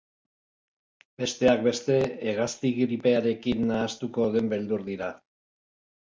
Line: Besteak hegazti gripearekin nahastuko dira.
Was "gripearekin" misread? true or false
false